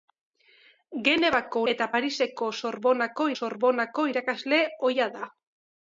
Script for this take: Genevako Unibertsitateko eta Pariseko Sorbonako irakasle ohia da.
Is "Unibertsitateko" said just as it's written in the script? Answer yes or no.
no